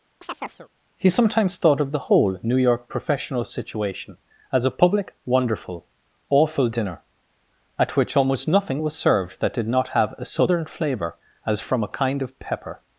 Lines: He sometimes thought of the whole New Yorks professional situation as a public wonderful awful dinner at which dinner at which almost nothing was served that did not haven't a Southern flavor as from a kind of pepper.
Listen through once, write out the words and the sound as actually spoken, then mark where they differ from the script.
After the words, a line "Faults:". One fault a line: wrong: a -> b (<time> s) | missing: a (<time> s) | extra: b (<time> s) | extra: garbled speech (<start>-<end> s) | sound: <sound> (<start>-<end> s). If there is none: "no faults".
He sometimes thought of the whole New York professional situation as a public wonderful awful dinner at which almost nothing was served that did not have a Southern flavor as from a kind of pepper.
Faults:
sound: chirp (0.2-0.7 s)
wrong: Yorks -> York (2.6 s)
missing: dinner at which (8.2 s)
wrong: haven't -> have (9.9 s)